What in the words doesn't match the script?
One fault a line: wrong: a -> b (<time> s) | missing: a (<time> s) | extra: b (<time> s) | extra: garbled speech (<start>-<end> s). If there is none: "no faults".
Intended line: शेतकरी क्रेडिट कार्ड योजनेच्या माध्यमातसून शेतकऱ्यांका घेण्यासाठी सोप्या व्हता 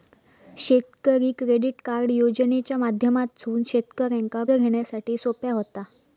no faults